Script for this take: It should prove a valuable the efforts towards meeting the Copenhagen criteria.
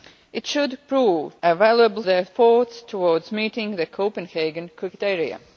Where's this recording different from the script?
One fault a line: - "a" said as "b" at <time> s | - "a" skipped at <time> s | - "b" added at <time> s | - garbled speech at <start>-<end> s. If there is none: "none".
none